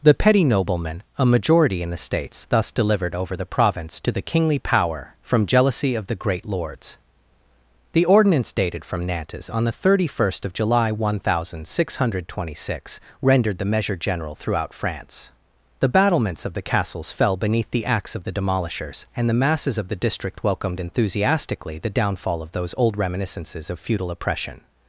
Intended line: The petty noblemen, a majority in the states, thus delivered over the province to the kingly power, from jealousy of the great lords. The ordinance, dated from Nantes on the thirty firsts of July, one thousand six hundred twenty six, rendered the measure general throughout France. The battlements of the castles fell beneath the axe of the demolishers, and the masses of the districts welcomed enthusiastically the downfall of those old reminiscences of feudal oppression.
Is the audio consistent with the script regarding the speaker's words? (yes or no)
no